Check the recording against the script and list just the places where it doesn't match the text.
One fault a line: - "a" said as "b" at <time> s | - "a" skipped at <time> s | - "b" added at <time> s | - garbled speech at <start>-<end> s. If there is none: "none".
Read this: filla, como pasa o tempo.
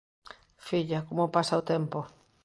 none